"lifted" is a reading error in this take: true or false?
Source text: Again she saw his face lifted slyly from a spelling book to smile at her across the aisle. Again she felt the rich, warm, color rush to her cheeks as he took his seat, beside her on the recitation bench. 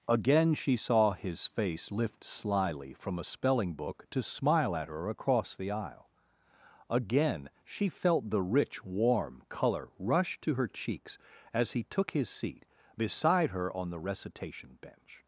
true